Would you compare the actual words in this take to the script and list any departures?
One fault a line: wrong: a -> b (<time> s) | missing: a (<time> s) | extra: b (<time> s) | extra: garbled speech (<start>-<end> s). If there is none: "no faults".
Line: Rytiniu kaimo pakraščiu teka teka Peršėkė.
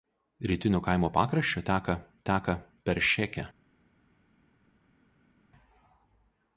no faults